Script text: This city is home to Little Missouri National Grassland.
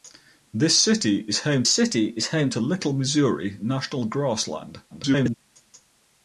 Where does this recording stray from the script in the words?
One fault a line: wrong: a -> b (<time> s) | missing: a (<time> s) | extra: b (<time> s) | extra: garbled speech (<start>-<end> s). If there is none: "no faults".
extra: city is home (1.7 s)
extra: garbled speech (4.9-5.4 s)